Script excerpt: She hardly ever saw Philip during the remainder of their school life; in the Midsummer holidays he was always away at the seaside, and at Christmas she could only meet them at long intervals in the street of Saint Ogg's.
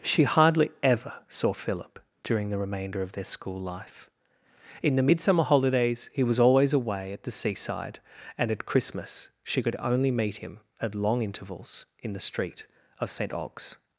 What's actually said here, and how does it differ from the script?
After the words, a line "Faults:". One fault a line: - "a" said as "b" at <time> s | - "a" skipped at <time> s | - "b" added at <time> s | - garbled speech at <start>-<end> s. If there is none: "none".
She hardly ever saw Philip during the remainder of their school life; in the Midsummer holidays he was always away at the seaside, and at Christmas she could only meet him at long intervals in the street of Saint Ogg's.
Faults:
- "them" said as "him" at 10.4 s